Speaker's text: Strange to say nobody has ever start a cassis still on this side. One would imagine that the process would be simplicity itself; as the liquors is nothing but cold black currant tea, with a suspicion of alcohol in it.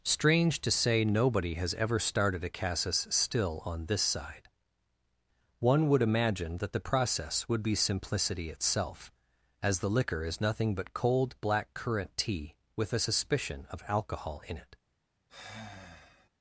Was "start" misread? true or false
true